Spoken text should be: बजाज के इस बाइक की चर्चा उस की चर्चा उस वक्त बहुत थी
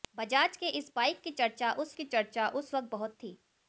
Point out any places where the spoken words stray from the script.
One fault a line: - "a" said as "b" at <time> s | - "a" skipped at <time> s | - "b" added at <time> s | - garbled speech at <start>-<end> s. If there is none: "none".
none